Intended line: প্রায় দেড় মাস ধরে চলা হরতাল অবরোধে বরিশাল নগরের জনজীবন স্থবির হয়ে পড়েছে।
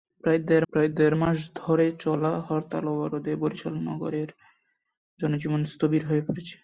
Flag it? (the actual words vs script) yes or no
yes